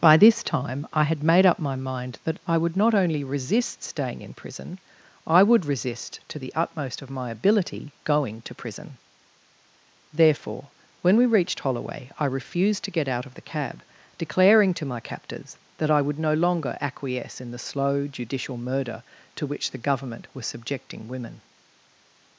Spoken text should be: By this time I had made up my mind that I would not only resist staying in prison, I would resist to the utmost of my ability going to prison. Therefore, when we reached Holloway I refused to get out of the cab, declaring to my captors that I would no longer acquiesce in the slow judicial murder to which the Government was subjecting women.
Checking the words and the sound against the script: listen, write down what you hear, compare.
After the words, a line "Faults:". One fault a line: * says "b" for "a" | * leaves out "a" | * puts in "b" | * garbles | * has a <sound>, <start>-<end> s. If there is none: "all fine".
By this time I had made up my mind that I would not only resist staying in prison, I would resist to the utmost of my ability going to prison. Therefore, when we reached Holloway I refused to get out of the cab, declaring to my captors that I would no longer acquiesce in the slow judicial murder to which the Government was subjecting women.
Faults:
all fine